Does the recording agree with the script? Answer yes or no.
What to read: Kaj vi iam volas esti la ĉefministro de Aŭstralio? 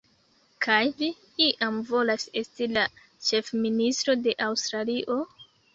yes